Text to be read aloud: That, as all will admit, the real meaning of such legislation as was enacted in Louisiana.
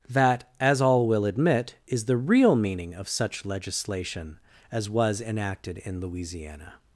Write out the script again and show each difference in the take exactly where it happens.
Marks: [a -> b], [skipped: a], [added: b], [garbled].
That, as all will admit, [added: is] the real meaning of such legislation as was enacted in Louisiana.